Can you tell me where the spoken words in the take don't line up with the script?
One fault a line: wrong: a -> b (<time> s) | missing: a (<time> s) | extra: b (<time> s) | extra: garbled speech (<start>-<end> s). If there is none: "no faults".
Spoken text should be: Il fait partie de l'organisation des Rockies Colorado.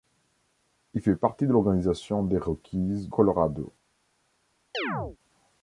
no faults